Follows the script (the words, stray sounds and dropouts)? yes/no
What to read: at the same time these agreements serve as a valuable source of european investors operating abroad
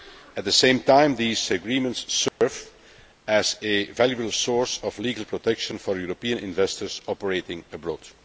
no